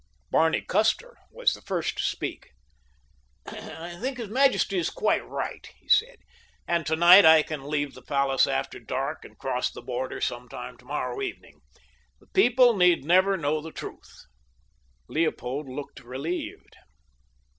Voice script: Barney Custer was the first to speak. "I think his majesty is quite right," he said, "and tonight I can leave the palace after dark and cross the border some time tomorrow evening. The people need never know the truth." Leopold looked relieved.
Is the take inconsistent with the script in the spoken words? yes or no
no